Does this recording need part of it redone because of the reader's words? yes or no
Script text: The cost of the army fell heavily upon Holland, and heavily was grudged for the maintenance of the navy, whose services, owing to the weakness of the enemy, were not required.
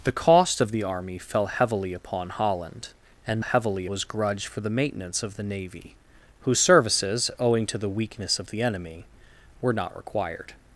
no